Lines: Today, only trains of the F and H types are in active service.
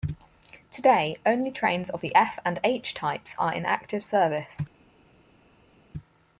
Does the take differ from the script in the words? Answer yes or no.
no